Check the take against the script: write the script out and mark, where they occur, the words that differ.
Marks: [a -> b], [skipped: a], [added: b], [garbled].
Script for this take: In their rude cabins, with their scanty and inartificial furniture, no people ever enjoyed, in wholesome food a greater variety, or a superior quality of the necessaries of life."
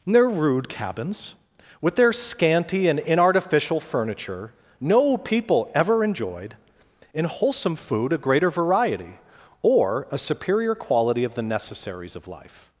In their rude cabins, with their scanty and inartificial furniture, no people ever enjoyed, in wholesome food a greater variety, or a superior quality of the necessaries of life."